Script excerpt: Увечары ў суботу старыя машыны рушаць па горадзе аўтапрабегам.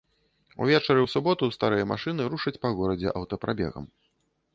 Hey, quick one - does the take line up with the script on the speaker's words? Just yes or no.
yes